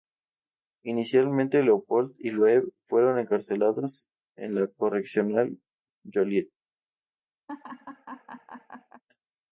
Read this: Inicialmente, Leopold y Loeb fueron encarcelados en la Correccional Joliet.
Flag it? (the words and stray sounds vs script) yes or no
yes